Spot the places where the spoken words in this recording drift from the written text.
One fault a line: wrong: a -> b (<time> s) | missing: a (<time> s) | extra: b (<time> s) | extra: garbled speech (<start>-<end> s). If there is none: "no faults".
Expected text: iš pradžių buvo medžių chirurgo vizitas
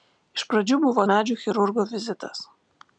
no faults